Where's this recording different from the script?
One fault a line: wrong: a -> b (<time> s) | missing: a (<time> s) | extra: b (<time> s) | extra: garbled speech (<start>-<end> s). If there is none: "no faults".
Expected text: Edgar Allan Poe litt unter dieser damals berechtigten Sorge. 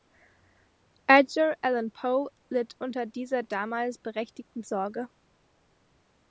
no faults